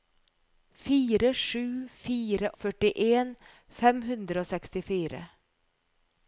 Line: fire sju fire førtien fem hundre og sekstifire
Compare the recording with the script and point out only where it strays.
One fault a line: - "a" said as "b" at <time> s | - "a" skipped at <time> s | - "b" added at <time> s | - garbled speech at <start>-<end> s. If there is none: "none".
none